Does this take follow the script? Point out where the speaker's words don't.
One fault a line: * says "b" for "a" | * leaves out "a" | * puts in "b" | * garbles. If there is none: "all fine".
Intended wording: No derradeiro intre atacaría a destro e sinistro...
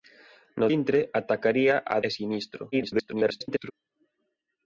* leaves out "derradeiro"
* leaves out "destro"
* garbles